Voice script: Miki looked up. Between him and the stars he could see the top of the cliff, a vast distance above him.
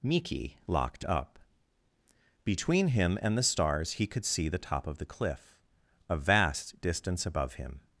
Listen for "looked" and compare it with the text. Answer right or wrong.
wrong